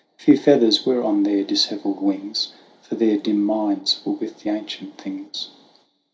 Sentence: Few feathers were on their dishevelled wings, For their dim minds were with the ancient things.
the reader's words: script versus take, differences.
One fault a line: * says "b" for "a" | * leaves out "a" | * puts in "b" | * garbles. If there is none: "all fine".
all fine